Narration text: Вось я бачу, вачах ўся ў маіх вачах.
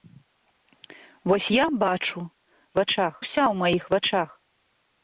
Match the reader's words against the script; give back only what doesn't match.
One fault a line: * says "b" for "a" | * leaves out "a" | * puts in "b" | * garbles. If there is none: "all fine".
all fine